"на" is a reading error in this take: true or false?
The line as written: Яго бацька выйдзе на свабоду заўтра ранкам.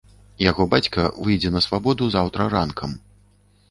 false